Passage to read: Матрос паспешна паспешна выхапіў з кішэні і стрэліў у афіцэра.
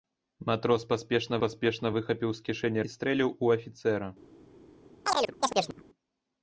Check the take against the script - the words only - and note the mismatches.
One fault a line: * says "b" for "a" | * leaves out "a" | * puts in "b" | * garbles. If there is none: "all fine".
all fine